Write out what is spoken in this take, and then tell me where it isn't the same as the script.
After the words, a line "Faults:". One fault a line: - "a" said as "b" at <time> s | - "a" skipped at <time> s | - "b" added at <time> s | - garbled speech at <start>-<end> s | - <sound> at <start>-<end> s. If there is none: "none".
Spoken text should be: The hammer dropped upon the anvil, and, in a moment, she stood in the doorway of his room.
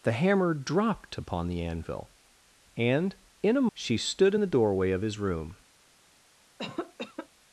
The hammer dropped upon the anvil, and, in a she stood in the doorway of his room.
Faults:
- "moment" skipped at 3.7 s
- cough at 6.6-7.3 s